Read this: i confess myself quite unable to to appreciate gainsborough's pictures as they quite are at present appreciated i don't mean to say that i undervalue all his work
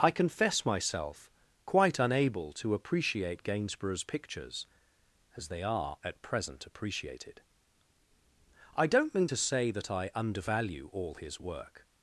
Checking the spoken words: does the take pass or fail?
fail